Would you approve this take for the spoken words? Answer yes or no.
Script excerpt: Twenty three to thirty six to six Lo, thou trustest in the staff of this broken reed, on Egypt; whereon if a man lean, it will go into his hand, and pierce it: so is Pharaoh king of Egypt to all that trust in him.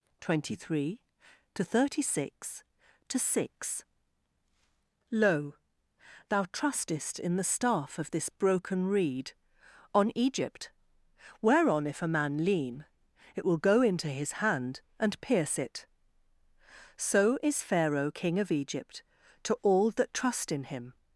yes